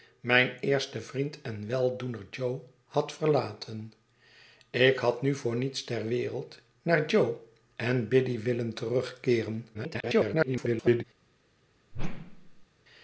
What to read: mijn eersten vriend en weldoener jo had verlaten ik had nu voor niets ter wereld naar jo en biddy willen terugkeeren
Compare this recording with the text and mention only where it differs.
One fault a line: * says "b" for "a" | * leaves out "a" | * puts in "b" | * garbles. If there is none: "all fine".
* garbles